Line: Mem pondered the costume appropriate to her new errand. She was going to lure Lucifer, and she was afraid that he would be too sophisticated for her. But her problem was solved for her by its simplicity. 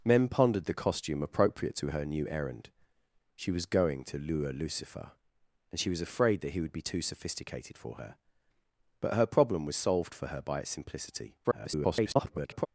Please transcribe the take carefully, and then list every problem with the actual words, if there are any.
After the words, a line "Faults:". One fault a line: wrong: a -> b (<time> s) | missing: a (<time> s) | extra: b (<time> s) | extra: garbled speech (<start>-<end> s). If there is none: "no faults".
Mem pondered the costume appropriate to her new errand. She was going to lure Lucifer, and she was afraid that he would be too sophisticated for her. But her problem was solved for her by its simplicity. [garbled]
Faults:
extra: garbled speech (11.4-12.7 s)